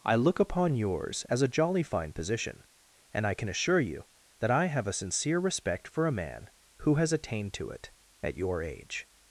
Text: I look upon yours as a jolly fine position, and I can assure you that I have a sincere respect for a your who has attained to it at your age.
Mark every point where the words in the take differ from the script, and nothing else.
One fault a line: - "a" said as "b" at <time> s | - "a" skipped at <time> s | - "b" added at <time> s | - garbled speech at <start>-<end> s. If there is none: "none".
- "your" said as "man" at 6.1 s